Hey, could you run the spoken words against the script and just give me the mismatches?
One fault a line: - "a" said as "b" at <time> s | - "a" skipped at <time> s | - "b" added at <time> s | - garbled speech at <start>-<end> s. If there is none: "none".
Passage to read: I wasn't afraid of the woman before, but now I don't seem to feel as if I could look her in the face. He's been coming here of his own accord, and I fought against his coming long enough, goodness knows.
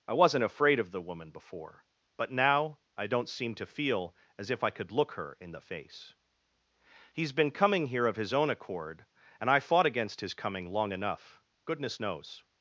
none